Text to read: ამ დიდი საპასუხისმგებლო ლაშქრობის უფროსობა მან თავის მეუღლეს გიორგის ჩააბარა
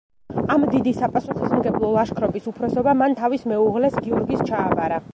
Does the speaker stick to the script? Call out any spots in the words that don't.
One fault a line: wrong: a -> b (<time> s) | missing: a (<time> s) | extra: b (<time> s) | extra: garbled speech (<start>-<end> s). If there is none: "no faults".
no faults